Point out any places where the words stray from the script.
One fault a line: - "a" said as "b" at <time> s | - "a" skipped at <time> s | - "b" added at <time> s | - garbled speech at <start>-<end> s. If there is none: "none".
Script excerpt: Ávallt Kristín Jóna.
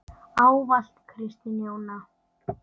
none